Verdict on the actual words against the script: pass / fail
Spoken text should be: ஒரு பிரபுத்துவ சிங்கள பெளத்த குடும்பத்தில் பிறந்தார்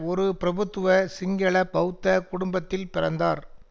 pass